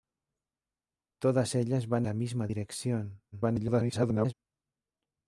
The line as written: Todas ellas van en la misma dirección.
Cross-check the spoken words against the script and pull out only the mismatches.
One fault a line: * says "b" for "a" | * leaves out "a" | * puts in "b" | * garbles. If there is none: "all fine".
* leaves out "en"
* garbles